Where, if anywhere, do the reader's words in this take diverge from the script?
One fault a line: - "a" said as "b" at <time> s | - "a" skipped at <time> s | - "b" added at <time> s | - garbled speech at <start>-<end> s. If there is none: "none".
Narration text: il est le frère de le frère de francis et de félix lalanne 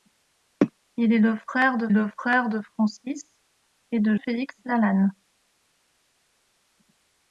none